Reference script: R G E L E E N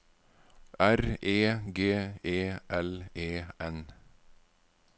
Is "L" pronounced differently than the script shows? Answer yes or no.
no